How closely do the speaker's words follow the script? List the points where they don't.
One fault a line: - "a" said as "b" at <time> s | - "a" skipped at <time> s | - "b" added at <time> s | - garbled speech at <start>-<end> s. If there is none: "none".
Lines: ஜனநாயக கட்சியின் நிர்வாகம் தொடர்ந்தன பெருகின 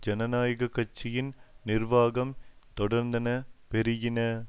none